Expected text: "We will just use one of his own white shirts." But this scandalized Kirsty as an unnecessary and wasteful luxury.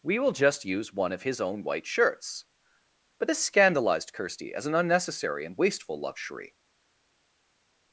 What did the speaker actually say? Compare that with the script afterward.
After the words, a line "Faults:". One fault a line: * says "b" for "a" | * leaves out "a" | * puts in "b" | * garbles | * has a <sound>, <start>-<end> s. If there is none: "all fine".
"We will just use one of his own white shirts." But this scandalized Kirsty as an unnecessary and wasteful luxury.
Faults:
all fine